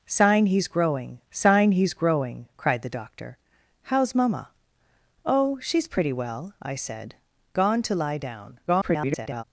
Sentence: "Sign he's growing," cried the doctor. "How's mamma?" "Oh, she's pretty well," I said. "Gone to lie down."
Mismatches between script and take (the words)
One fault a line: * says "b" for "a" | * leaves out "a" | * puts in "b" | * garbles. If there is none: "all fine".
* puts in "sign he's growing"
* garbles